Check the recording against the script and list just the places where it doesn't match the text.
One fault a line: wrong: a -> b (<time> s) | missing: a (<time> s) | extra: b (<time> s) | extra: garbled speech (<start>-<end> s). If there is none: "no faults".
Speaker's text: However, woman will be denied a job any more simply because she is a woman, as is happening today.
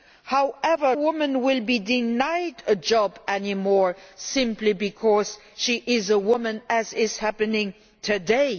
no faults